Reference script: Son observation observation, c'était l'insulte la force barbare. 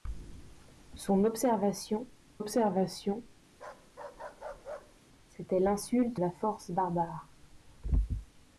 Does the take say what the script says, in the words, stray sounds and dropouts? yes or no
no